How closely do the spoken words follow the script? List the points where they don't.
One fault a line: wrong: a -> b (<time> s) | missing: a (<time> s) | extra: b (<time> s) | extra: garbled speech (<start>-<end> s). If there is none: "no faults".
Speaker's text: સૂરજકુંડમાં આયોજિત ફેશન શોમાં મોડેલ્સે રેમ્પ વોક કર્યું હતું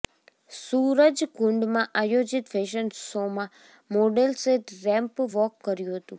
no faults